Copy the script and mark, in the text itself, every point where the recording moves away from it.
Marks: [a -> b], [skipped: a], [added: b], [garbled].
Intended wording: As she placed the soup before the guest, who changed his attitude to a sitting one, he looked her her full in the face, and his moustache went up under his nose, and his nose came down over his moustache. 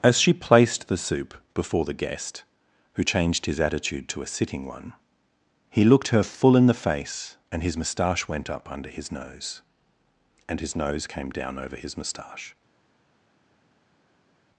As she placed the soup before the guest, who changed his attitude to a sitting one, he looked her [skipped: her] full in the face, and his moustache went up under his nose, and his nose came down over his moustache.